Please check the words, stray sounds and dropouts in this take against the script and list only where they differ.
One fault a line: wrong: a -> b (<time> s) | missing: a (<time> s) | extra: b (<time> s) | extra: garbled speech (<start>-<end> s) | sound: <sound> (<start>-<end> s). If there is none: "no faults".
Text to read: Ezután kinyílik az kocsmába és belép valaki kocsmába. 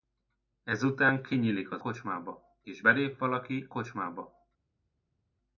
no faults